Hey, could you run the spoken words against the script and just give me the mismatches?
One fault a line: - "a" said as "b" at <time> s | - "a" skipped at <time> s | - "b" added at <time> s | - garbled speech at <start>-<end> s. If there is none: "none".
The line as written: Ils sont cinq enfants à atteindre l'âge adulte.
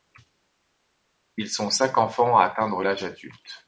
none